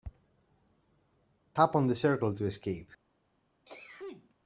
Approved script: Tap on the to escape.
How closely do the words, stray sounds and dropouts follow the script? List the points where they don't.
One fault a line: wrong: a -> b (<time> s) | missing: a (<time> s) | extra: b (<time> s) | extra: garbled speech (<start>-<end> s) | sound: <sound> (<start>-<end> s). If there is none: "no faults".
extra: circle (1.9 s)
sound: sneeze (3.7-4.4 s)